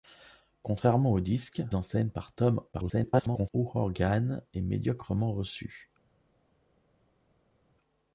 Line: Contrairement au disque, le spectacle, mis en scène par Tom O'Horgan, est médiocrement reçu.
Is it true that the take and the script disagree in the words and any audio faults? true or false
true